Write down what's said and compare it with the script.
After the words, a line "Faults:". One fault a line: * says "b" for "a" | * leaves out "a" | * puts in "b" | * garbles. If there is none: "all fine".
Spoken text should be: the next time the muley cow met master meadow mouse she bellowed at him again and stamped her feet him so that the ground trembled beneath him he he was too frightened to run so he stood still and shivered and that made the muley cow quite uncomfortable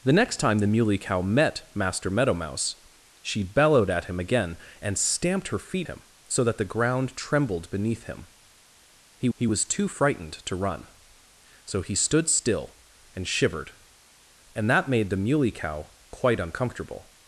the next time the muley cow met master meadow mouse she bellowed at him again and stamped her feet him so that the ground trembled beneath him he he was too frightened to run so he stood still and shivered and that made the muley cow quite uncomfortable
Faults:
all fine